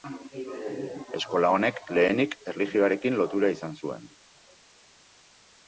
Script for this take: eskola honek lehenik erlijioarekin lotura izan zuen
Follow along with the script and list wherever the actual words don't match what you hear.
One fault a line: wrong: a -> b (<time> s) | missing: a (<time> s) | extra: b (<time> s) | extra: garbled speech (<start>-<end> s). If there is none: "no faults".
no faults